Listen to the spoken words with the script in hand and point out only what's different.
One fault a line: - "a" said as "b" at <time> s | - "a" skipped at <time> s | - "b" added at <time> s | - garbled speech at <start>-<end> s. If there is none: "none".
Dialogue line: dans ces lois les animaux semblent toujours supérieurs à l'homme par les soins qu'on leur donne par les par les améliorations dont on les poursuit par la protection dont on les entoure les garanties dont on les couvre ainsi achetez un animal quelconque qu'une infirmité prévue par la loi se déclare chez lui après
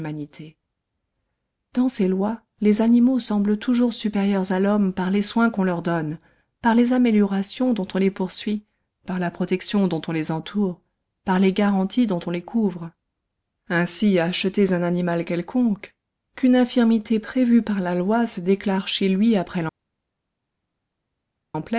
- "par les" skipped at 6.9 s
- "par" added at 11.2 s